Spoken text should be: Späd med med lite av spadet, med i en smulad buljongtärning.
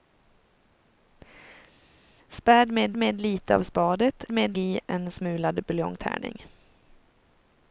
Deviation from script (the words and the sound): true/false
false